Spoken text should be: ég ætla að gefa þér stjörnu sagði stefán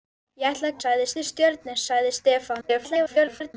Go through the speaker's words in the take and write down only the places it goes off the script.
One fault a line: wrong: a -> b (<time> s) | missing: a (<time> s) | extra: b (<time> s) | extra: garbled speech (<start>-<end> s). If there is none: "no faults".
wrong: gefa -> sagði (0.8 s)
extra: garbled speech (2.6-3.5 s)